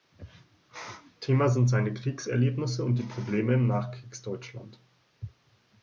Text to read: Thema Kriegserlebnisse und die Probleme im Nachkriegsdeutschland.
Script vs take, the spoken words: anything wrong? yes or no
yes